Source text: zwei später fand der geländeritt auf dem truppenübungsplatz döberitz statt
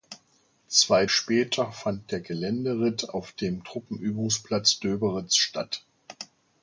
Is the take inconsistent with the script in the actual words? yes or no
no